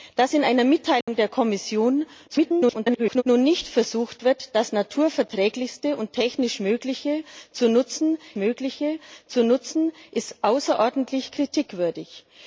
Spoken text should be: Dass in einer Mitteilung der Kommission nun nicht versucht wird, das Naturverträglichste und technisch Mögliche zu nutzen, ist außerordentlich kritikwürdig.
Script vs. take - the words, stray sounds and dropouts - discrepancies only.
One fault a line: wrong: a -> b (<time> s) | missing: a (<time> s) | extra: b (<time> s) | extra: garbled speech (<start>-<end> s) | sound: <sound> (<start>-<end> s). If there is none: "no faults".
sound: dropout (1.0-1.1 s)
extra: garbled speech (2.3-3.2 s)
extra: Mögliche zu nutzen (8.4 s)